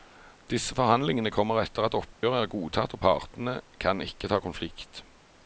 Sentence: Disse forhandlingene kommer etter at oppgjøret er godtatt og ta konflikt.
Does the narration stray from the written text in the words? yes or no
yes